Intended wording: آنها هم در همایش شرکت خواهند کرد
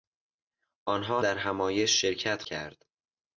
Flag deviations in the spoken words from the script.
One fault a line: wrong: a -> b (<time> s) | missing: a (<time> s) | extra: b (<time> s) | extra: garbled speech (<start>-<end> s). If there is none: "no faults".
missing: هم (1.2 s)
missing: خواهند (2.4 s)